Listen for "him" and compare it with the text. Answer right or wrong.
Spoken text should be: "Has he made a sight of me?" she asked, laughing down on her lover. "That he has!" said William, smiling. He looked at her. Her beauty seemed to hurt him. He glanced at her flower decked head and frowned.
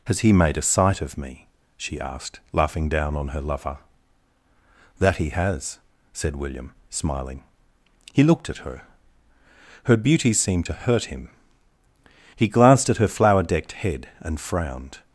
right